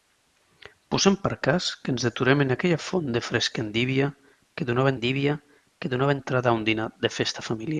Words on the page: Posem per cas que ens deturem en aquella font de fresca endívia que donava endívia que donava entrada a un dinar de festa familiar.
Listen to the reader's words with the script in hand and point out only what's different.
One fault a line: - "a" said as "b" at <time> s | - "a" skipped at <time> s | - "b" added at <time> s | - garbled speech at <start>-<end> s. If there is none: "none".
none